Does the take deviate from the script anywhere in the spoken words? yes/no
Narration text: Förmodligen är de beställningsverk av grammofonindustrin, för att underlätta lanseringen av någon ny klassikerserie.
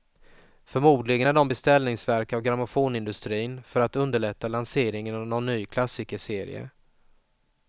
no